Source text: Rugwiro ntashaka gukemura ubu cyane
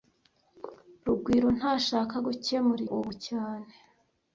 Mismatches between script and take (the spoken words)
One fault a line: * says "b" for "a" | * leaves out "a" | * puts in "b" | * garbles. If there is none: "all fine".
all fine